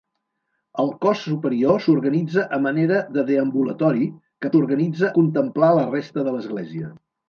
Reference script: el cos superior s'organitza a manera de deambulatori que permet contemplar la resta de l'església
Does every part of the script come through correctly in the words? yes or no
no